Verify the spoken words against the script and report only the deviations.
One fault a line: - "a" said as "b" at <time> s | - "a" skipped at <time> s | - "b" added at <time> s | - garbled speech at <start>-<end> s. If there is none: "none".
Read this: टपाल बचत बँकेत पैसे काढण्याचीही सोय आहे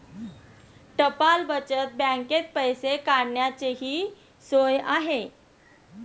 none